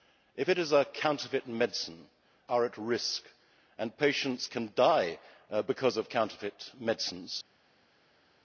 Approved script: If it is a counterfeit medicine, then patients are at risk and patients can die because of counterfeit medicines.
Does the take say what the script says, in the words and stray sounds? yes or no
no